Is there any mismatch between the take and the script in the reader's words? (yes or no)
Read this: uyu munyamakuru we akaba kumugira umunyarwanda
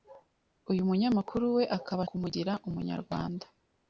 no